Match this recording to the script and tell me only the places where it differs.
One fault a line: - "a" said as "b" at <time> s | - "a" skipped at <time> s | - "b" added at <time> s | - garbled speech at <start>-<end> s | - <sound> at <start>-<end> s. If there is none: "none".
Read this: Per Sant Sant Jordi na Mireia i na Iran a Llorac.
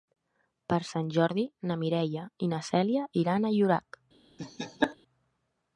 - "Sant" skipped at 1.1 s
- "Cèlia" added at 2.7 s
- laugh at 4.4-5.0 s